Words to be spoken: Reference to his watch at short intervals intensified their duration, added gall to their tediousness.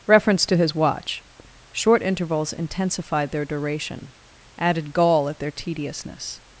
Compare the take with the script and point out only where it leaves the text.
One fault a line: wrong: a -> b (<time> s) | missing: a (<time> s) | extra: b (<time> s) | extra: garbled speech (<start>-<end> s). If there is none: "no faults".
missing: at (1.2 s)
wrong: to -> at (5.3 s)